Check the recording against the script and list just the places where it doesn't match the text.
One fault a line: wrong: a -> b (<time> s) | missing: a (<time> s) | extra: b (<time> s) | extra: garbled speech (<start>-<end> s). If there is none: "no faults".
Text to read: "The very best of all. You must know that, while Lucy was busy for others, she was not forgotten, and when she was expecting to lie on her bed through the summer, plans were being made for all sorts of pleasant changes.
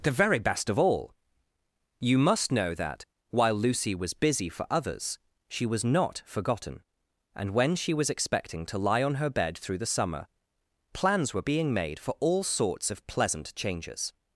no faults